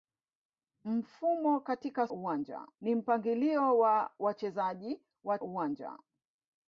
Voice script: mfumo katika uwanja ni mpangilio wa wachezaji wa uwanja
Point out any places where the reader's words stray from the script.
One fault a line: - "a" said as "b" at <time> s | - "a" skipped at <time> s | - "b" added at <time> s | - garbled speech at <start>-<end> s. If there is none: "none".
none